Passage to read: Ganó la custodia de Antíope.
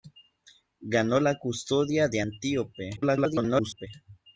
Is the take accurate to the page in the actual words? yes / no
no